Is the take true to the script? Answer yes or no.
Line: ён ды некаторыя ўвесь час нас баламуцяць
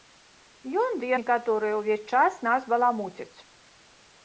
yes